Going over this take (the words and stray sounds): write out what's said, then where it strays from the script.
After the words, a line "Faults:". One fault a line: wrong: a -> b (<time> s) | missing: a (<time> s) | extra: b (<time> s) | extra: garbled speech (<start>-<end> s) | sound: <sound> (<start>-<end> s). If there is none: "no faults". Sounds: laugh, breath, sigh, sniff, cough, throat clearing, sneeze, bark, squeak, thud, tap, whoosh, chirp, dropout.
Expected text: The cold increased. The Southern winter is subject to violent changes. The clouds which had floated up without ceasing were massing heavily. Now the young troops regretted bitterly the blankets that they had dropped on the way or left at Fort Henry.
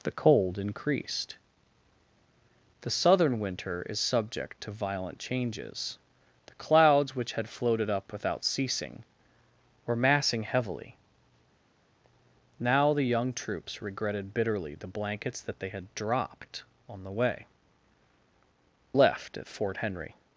The cold increased. The Southern winter is subject to violent changes. The clouds which had floated up without ceasing were massing heavily. Now the young troops regretted bitterly the blankets that they had dropped on the way left at Fort Henry.
Faults:
missing: or (17.5 s)